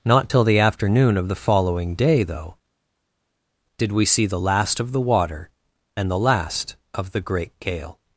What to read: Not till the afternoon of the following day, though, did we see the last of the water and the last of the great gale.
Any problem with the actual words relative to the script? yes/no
no